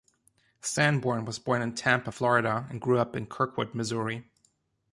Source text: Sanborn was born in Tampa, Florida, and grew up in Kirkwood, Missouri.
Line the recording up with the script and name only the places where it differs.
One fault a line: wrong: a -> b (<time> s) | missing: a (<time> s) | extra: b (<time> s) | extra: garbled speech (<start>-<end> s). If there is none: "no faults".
no faults